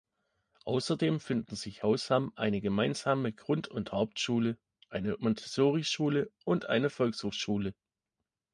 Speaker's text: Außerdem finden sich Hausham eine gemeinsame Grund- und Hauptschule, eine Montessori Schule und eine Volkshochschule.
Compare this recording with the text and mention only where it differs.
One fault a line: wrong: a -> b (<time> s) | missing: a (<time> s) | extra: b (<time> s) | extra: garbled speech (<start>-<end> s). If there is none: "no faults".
no faults